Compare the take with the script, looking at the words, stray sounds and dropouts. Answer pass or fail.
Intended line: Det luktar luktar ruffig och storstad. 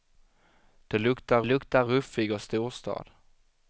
pass